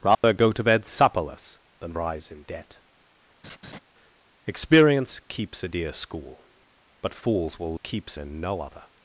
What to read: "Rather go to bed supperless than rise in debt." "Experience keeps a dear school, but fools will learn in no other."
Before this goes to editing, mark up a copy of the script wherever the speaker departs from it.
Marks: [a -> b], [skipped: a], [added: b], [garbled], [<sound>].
"Rather [dropout] go to bed supperless than rise in debt." [laugh] "Experience keeps a dear school, but fools will [learn -> keeps] in no other."